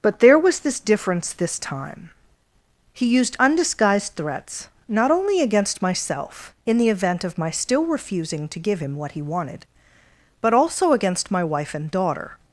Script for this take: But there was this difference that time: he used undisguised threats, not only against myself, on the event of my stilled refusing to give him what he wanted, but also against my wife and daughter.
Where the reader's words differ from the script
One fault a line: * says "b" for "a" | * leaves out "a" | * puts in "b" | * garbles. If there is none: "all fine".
* says "this" for "that"
* says "in" for "on"
* says "still" for "stilled"